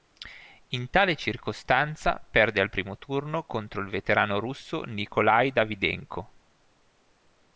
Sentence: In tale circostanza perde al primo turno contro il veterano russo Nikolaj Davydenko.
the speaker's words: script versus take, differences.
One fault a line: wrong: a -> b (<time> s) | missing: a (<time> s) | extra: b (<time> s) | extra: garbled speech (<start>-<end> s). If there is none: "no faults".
no faults